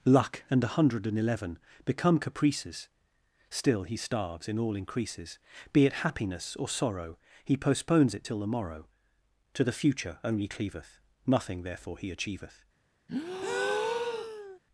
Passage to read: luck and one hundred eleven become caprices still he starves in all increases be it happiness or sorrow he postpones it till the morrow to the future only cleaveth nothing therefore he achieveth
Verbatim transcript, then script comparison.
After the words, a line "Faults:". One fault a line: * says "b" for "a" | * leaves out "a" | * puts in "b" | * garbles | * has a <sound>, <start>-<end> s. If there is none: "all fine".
luck and a hundred and eleven become caprices still he starves in all increases be it happiness or sorrow he postpones it till the morrow to the future only cleaveth nothing therefore he achieveth
Faults:
* says "a" for "one"
* puts in "and"
* has a breath, 13.1-14.6 s